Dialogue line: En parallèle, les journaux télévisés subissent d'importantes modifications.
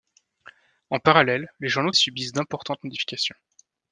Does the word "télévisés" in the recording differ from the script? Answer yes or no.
yes